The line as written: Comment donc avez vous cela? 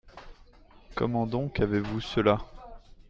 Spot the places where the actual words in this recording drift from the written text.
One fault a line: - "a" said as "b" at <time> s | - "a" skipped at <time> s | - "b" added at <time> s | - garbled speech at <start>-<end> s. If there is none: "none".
none